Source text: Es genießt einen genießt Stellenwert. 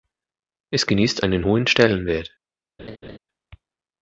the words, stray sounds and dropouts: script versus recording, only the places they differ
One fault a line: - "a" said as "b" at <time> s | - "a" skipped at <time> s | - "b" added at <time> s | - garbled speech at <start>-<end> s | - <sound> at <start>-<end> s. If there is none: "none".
- "genießt" said as "hohen" at 1.5 s
- laugh at 2.8-3.2 s